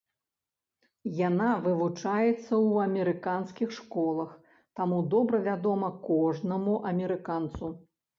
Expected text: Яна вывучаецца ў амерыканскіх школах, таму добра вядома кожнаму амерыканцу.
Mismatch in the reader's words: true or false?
false